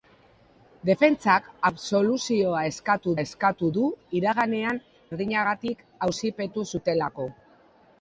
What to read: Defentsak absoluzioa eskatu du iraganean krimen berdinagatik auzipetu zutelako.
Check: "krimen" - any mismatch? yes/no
yes